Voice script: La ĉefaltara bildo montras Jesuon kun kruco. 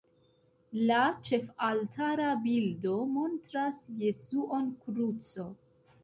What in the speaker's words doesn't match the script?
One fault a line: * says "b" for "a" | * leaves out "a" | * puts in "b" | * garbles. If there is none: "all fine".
* leaves out "kun"